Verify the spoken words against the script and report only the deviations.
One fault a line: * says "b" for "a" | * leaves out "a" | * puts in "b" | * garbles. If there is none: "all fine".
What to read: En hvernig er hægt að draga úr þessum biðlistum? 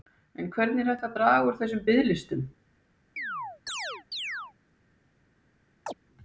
all fine